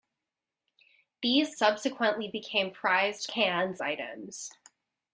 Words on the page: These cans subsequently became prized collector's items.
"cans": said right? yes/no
no